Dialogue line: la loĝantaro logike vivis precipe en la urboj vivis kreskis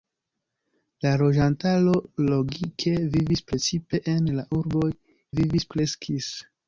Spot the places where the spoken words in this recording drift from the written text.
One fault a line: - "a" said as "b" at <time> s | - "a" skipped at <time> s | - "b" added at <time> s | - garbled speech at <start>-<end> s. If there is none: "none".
none